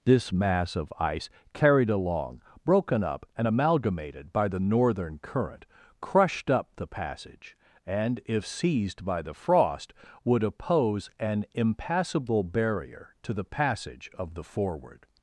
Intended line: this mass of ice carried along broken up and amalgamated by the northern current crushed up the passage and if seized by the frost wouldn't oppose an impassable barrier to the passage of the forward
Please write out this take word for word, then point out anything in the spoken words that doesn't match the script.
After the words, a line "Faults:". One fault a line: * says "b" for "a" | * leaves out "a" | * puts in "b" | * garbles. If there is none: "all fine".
this mass of ice carried along broken up and amalgamated by the northern current crushed up the passage and if seized by the frost would oppose an impassable barrier to the passage of the forward
Faults:
* says "would" for "wouldn't"